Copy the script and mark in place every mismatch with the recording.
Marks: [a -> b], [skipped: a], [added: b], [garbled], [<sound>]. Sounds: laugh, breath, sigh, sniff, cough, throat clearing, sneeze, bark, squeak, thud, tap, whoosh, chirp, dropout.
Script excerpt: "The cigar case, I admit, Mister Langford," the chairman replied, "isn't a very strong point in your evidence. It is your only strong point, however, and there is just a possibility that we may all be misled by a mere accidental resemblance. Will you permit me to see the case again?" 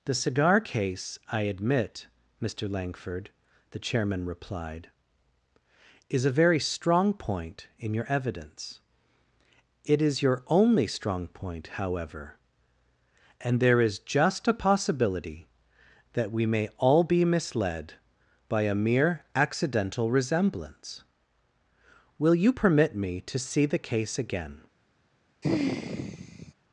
"The cigar case, I admit, Mister Langford," the chairman replied, ["isn't -> is] a very strong point in your evidence. It is your only strong point, however, and there is just a possibility that we may all be misled by a mere accidental resemblance. Will you permit me to see the case again?" [sigh]